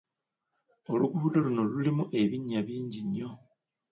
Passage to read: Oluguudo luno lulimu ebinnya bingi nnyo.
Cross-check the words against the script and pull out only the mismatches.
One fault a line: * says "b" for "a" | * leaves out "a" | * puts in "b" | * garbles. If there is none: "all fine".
all fine